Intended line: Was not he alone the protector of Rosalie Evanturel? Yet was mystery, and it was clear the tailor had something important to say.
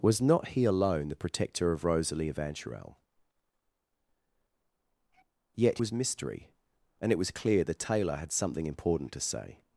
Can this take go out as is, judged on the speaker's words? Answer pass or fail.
pass